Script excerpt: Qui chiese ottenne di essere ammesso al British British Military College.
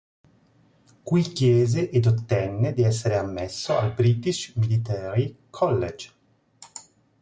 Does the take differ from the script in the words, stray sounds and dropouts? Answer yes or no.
yes